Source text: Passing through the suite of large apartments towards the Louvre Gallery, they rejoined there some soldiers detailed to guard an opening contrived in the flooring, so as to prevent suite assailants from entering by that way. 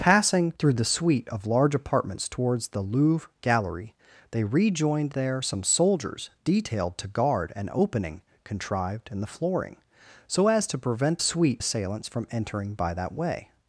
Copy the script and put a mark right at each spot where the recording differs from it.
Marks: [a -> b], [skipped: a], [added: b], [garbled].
Passing through the suite of large apartments towards the Louvre Gallery, they rejoined there some soldiers detailed to guard an opening contrived in the flooring, so as to prevent suite assailants from entering by that way.